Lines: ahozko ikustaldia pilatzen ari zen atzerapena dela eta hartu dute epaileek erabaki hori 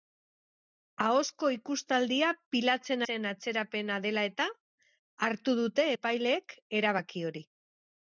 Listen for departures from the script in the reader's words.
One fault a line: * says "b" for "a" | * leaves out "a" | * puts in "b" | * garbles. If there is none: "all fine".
* leaves out "ari"